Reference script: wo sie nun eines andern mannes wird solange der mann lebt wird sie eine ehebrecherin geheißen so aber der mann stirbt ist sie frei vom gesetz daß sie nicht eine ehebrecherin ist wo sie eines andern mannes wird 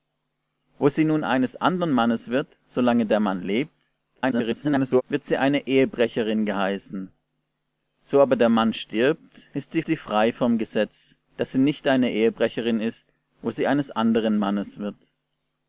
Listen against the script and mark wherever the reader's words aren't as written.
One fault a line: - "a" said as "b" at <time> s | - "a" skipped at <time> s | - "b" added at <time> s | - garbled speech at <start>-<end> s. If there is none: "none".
- garbled speech at 4.2-5.0 s
- "sie" added at 9.9 s